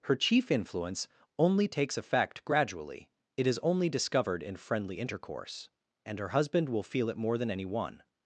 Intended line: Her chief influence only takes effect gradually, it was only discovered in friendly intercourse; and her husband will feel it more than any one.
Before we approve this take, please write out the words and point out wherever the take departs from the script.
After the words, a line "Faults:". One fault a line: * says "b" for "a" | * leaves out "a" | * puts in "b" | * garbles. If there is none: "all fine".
Her chief influence only takes effect gradually, it is only discovered in friendly intercourse; and her husband will feel it more than any one.
Faults:
* says "is" for "was"